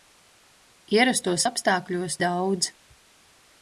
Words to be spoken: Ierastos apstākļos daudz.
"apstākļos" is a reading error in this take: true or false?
false